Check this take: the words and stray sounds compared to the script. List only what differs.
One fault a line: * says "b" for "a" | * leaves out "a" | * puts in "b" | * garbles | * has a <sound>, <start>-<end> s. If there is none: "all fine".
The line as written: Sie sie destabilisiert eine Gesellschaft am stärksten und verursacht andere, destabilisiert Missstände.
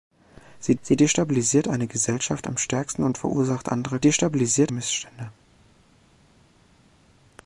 all fine